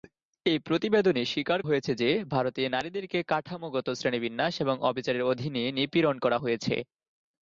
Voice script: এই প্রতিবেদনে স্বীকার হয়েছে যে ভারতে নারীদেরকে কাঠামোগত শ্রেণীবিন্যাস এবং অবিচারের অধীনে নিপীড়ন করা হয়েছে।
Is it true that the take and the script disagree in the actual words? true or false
false